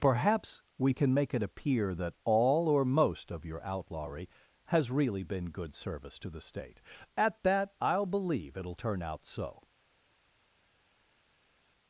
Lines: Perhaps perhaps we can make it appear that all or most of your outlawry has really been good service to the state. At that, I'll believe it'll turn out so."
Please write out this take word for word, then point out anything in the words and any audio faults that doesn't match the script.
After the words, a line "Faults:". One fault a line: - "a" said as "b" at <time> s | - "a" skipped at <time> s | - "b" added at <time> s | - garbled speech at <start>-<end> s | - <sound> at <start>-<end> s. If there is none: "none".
Perhaps we can make it appear that all or most of your outlawry has really been good service to the state. At that, I'll believe it'll turn out so."
Faults:
- "perhaps" skipped at 0.6 s